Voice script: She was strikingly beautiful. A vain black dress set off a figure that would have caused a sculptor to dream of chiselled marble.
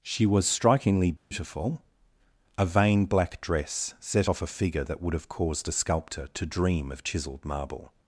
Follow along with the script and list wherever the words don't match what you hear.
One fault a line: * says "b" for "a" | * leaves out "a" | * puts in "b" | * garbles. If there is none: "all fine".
all fine